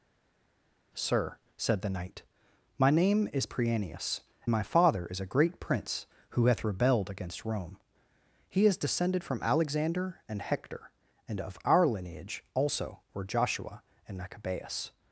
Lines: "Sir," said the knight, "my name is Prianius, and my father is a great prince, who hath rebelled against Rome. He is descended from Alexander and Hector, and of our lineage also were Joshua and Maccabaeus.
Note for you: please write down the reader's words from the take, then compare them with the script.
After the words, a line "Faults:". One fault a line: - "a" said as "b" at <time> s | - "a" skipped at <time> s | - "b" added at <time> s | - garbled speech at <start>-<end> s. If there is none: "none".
"Sir," said the knight, "my name is Prianius, my father is a great prince, who hath rebelled against Rome. He is descended from Alexander and Hector, and of our lineage also were Joshua and Maccabaeus.
Faults:
- "and" skipped at 4.2 s